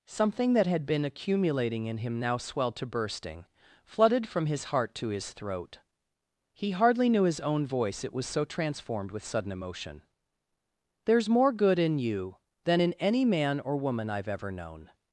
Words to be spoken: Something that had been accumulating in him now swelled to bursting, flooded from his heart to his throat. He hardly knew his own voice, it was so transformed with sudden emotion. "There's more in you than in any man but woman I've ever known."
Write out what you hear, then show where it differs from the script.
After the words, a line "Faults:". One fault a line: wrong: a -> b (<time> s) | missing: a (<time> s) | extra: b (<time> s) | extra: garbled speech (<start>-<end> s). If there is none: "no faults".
Something that had been accumulating in him now swelled to bursting, flooded from his heart to his throat. He hardly knew his own voice, it was so transformed with sudden emotion. "There's more good in you than in any man or woman I've ever known."
Faults:
extra: good (11.5 s)
wrong: but -> or (13.6 s)